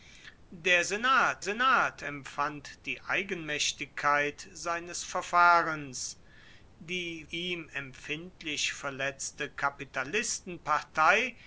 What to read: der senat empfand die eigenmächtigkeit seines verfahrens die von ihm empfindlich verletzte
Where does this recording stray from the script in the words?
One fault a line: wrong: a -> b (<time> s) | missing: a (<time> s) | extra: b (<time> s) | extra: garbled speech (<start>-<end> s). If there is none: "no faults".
extra: senat (1.4 s)
missing: von (7.2 s)